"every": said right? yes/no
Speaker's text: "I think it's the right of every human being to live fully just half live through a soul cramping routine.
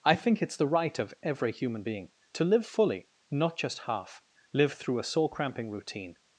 yes